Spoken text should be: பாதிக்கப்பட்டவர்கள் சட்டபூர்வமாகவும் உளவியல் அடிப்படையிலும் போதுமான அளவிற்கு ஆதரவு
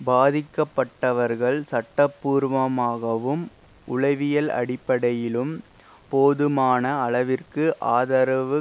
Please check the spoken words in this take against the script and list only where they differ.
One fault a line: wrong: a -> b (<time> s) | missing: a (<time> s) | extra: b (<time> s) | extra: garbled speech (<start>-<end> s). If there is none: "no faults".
no faults